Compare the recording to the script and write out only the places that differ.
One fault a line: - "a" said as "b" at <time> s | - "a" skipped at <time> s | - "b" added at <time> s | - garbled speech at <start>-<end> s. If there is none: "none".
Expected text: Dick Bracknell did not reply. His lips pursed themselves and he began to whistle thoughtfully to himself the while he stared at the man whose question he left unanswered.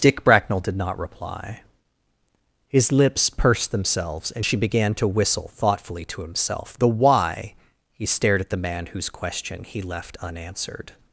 - "he" said as "she" at 4.4 s
- "while" said as "why" at 6.9 s